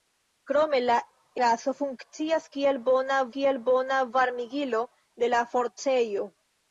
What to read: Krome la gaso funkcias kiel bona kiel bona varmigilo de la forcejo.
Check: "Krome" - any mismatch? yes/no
no